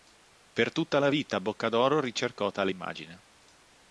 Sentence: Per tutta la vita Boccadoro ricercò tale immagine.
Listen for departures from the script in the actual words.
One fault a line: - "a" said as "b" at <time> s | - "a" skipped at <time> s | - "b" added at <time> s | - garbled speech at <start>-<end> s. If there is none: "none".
none